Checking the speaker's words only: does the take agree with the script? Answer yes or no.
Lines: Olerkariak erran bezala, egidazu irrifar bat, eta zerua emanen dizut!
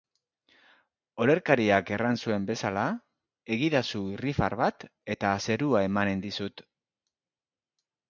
no